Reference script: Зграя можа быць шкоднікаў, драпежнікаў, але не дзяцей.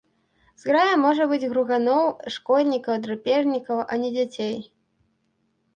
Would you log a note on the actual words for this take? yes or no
yes